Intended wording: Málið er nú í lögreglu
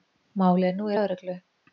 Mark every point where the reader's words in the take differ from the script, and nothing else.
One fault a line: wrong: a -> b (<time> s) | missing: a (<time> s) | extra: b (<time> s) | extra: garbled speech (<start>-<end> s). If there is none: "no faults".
no faults